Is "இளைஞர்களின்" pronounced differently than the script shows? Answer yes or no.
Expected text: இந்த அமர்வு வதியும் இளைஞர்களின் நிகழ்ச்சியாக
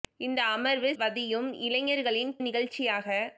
no